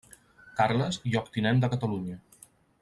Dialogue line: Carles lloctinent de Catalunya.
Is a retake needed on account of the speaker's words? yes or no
no